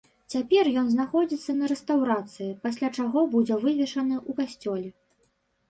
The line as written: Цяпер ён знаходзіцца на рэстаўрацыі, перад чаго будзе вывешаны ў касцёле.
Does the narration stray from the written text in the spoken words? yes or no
yes